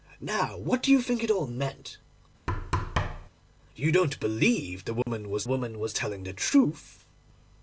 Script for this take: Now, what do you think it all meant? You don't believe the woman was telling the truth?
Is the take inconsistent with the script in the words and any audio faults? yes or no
yes